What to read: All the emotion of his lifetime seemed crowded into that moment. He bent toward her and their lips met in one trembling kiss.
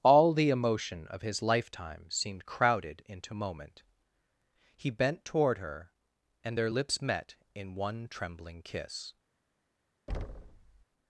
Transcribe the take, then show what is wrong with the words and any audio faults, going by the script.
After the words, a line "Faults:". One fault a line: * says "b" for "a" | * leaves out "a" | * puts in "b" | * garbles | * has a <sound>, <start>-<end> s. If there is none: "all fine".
All the emotion of his lifetime seemed crowded into moment. He bent toward her and their lips met in one trembling kiss.
Faults:
* leaves out "that"
* has a thud, 10.1-10.8 s